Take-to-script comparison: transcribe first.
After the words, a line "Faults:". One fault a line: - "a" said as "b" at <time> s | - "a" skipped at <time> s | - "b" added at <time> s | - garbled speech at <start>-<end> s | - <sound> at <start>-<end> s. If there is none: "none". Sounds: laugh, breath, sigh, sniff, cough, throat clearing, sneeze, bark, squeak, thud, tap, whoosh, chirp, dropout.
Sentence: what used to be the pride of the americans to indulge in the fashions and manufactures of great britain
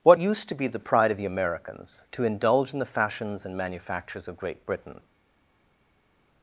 what used to be the pride of the americans to indulge in the fashions and manufactures of great britain
Faults:
none